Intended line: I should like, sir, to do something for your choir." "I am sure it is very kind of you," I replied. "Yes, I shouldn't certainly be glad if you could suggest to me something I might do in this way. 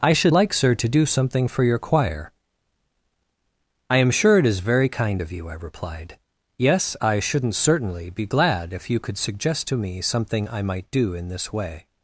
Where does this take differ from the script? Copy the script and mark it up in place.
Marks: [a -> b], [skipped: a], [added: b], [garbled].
I should like, sir, to do something for your choir." "I am sure it is very kind of you," I replied. "Yes, I shouldn't certainly be glad if you could suggest to me something I might do in this way.